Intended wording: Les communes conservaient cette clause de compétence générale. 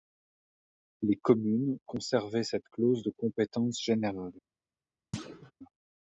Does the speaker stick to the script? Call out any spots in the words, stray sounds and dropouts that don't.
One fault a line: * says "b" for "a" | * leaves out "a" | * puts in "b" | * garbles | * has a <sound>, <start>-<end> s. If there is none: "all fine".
* has a thud, 5.1-5.5 s